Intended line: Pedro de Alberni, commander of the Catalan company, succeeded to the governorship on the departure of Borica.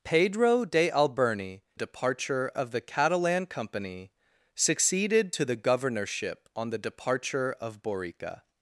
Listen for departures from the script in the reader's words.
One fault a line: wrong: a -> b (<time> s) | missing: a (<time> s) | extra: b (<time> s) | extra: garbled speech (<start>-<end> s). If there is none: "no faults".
wrong: commander -> departure (1.7 s)